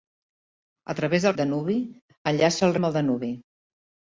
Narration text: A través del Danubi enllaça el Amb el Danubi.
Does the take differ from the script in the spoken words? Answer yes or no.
no